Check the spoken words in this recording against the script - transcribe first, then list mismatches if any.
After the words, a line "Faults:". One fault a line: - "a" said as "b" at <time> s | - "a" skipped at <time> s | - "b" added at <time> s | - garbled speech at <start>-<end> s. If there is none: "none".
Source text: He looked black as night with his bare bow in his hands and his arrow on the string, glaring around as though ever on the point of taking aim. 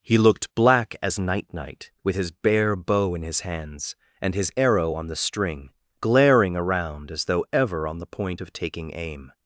He looked black as night night with his bare bow in his hands and his arrow on the string, glaring around as though ever on the point of taking aim.
Faults:
- "night" added at 1.5 s